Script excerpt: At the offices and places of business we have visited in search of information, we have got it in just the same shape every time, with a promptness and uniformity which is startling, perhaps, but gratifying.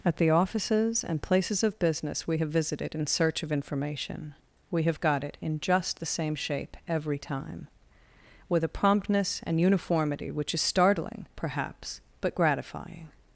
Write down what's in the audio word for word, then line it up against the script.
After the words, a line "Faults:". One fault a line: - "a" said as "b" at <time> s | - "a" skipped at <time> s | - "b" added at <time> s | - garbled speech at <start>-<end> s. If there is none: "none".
At the offices and places of business we have visited in search of information, we have got it in just the same shape every time, with a promptness and uniformity which is startling, perhaps, but gratifying.
Faults:
none